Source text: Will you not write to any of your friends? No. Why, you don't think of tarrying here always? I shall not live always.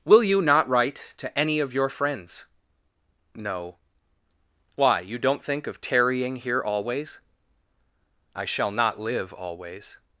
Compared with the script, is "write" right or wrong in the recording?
right